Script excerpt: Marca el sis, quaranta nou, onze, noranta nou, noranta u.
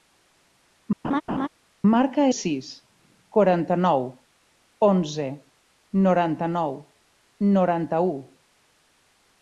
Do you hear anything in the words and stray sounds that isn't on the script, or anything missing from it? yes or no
yes